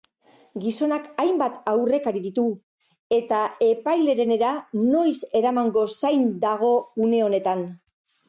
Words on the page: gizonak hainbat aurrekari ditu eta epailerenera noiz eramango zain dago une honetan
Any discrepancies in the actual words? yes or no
no